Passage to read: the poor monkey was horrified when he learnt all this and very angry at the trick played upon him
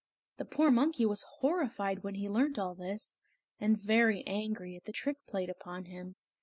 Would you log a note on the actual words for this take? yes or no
no